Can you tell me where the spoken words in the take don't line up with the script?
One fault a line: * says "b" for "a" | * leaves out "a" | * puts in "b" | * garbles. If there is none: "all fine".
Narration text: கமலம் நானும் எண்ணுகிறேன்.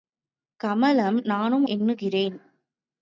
all fine